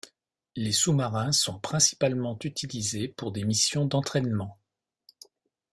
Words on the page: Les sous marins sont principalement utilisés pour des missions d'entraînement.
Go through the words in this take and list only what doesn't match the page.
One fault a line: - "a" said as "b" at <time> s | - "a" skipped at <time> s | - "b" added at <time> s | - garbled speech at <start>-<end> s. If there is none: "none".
none